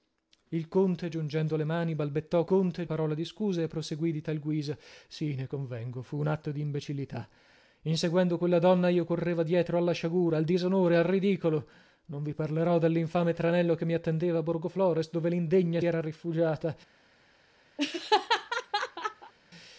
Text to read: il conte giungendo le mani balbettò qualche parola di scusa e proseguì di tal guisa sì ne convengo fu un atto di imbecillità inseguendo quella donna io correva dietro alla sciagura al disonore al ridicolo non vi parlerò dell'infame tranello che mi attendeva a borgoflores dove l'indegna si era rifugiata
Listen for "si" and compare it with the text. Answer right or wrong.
wrong